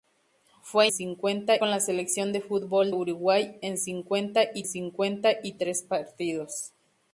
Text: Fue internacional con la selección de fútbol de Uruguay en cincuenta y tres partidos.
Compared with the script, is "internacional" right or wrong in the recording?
wrong